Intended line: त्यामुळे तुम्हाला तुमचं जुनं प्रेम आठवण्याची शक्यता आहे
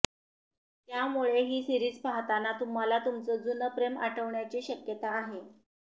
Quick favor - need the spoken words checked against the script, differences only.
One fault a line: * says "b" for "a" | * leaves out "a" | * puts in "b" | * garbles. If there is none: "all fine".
* puts in "ही सीरिज पाहताना"